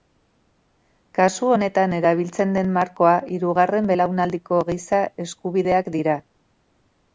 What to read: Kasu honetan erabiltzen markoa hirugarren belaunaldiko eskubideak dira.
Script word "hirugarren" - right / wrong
right